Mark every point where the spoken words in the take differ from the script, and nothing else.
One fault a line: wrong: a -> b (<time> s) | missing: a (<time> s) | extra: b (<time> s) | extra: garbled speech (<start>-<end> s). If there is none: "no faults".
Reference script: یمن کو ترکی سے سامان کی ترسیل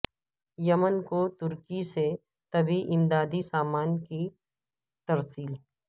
extra: طبی امدادی (2.5 s)